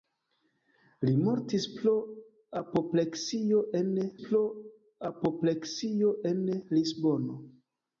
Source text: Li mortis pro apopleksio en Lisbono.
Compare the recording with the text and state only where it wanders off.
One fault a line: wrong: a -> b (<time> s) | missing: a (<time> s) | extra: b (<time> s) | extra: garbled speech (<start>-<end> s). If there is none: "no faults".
extra: pro apopleksio en (4.2 s)